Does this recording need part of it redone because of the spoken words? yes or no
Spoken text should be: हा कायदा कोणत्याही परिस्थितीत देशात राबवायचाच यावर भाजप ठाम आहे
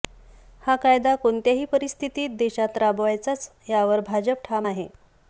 no